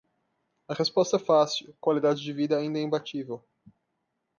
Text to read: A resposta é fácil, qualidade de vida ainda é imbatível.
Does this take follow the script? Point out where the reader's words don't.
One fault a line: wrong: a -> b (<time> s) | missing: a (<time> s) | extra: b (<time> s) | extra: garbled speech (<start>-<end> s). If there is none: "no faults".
no faults